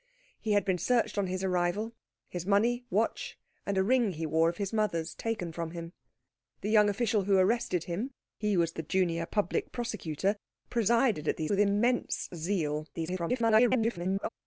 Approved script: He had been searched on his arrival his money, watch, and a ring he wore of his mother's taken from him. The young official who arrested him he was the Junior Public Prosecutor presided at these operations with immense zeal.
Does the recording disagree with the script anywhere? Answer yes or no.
yes